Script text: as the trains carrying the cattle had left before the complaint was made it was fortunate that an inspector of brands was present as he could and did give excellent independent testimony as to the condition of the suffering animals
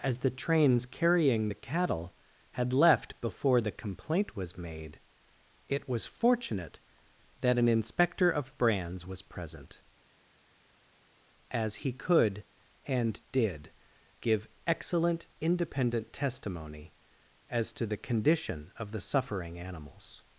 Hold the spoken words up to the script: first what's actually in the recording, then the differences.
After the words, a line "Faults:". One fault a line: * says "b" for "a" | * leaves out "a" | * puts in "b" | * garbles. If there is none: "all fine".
as the trains carrying the cattle had left before the complaint was made it was fortunate that an inspector of brands was present as he could and did give excellent independent testimony as to the condition of the suffering animals
Faults:
all fine